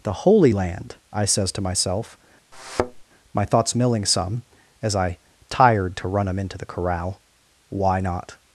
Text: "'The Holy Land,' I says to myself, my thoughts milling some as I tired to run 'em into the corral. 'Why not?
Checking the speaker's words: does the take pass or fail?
pass